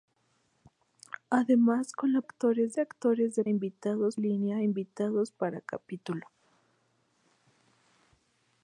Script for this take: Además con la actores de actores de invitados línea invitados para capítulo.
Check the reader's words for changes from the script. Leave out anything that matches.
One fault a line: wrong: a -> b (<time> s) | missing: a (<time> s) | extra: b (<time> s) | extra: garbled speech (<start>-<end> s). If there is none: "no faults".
no faults